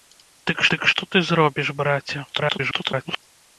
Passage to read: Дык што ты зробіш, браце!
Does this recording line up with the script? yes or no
no